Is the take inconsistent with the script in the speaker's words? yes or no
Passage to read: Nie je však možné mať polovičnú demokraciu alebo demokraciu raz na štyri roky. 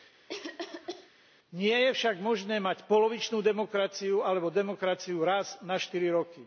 no